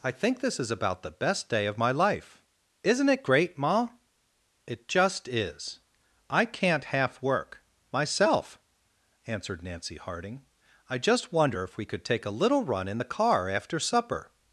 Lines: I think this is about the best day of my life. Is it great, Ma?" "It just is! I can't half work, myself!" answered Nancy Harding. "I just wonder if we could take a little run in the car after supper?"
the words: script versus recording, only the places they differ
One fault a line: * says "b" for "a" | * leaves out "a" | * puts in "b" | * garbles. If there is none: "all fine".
* says "Isn't" for "Is"